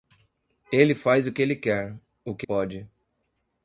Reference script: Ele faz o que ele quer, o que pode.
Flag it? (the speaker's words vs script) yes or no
no